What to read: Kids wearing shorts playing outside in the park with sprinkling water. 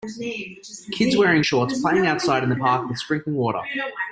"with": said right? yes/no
yes